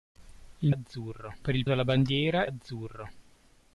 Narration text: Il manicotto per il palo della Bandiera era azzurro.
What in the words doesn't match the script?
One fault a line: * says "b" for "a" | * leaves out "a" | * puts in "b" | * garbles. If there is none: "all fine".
* says "azzurro" for "manicotto"
* leaves out "palo"
* leaves out "era"